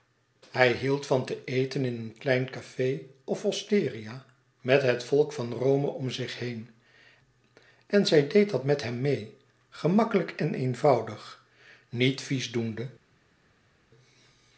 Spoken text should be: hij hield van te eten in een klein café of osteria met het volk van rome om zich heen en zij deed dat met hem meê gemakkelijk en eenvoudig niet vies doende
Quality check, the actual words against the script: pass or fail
pass